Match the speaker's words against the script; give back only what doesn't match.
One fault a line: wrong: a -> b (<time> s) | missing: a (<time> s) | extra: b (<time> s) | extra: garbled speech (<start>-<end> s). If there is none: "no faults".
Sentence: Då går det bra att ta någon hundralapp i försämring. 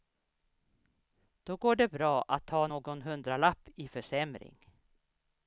no faults